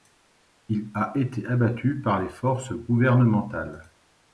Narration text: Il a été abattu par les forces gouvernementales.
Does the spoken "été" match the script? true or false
true